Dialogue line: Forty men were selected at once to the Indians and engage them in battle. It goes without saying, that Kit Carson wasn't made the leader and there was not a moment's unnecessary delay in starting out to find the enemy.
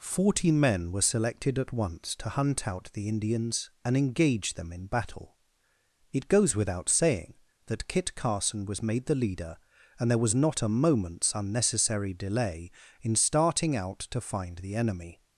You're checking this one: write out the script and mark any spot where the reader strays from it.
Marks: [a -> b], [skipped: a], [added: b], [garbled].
Forty men were selected at once to [added: hunt out] the Indians and engage them in battle. It goes without saying, that Kit Carson [wasn't -> was] made the leader and there was not a moment's unnecessary delay in starting out to find the enemy.